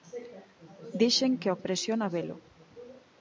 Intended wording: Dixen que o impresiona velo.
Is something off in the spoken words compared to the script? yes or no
no